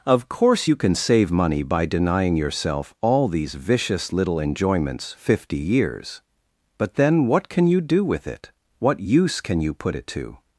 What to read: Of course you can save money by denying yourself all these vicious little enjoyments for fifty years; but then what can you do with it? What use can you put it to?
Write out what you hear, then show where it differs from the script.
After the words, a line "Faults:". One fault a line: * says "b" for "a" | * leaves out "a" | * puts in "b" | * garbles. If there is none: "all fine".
Of course you can save money by denying yourself all these vicious little enjoyments fifty years; but then what can you do with it? What use can you put it to?
Faults:
* leaves out "for"